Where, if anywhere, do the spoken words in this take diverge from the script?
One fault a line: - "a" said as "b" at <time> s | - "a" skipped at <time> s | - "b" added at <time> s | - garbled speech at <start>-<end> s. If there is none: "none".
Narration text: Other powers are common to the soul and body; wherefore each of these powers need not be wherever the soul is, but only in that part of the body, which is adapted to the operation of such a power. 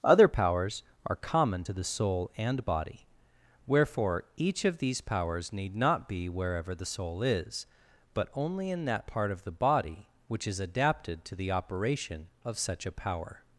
none